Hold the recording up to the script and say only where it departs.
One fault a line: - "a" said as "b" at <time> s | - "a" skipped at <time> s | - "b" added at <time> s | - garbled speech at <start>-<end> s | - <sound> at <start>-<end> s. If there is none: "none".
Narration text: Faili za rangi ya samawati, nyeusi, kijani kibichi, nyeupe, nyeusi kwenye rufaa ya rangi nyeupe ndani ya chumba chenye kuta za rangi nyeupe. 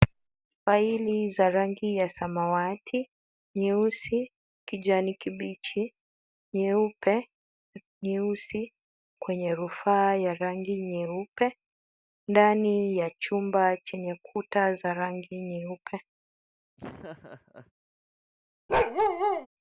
- laugh at 16.8-17.7 s
- bark at 18.7-19.5 s